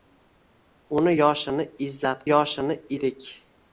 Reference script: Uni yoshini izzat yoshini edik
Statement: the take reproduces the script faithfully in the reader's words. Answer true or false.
true